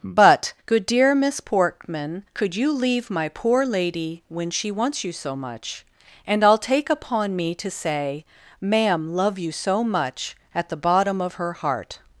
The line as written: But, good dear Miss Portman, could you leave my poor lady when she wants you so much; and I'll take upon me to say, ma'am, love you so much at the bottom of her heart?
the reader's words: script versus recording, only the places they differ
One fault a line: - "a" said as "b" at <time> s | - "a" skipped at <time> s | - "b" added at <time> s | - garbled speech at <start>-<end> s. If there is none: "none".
none